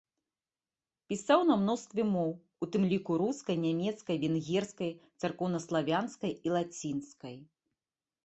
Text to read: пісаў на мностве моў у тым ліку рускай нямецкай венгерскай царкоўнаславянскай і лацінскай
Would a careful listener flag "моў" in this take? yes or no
no